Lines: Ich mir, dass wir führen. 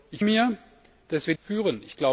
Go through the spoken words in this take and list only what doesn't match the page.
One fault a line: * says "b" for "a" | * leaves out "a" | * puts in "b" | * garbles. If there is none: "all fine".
all fine